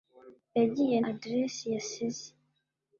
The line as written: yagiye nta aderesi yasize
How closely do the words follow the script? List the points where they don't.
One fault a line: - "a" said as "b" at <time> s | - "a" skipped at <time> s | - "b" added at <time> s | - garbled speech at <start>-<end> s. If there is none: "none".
- "nta" skipped at 1.0 s